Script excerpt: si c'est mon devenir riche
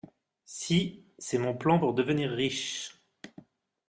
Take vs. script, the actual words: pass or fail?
fail